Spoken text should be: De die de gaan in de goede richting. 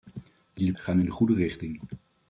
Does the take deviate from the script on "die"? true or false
false